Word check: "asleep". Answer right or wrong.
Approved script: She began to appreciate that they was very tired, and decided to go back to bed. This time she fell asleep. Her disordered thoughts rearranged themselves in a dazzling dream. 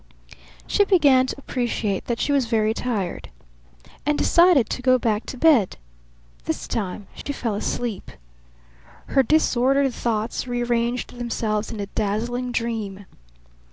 right